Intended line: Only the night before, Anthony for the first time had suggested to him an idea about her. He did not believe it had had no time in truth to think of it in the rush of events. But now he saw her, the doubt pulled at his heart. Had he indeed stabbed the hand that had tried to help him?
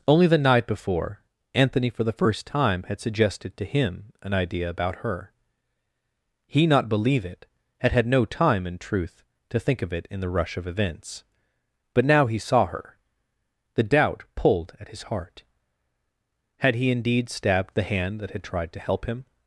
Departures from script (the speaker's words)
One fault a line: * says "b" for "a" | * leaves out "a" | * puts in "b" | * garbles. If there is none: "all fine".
* leaves out "did"